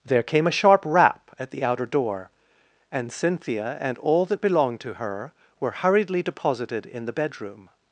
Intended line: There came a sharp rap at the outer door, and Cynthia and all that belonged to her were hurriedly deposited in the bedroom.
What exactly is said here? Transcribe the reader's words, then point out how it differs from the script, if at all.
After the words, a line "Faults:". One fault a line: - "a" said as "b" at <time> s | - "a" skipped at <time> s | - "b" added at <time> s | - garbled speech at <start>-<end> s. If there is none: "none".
There came a sharp rap at the outer door, and Cynthia and all that belonged to her were hurriedly deposited in the bedroom.
Faults:
none